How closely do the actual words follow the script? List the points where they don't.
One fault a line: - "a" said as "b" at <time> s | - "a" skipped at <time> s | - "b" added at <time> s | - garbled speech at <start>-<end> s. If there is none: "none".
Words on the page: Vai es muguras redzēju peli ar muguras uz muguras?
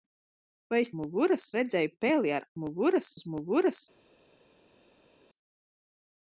none